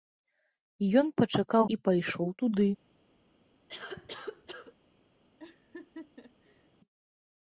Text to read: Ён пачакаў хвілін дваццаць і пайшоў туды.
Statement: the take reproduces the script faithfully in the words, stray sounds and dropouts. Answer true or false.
false